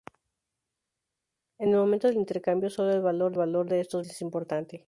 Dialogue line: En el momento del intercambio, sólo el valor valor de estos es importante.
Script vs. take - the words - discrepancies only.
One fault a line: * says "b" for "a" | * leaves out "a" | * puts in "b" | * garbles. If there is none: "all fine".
all fine